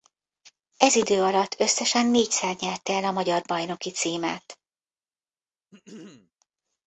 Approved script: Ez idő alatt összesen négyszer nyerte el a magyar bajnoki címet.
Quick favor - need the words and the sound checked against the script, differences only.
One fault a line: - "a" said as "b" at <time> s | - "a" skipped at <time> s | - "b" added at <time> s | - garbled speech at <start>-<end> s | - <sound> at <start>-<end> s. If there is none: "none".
- throat clearing at 5.7-6.3 s